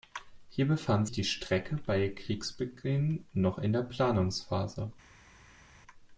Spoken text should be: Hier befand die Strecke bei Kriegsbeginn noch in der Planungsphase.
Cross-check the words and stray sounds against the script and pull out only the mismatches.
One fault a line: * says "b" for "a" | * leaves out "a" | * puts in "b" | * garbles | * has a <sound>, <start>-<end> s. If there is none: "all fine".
all fine